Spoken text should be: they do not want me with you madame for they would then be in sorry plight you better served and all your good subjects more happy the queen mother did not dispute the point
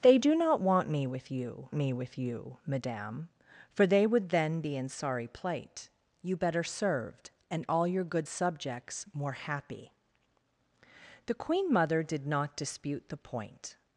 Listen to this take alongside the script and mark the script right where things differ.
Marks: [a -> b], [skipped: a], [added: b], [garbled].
they do not want me with you [added: me with you] madame for they would then be in sorry plight you better served and all your good subjects more happy the queen mother did not dispute the point